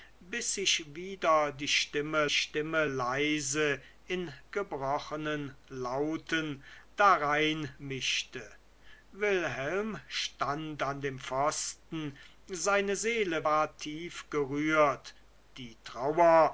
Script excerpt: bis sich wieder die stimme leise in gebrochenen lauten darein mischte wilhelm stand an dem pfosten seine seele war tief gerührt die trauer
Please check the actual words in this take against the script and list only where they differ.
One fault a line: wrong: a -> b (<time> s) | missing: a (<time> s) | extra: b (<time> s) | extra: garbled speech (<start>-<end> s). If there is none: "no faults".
extra: stimme (2.3 s)